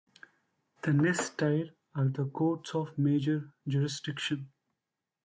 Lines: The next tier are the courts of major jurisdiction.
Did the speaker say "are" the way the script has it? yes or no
yes